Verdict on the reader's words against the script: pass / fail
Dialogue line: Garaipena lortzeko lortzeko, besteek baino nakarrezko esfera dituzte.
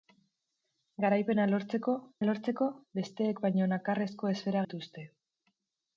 pass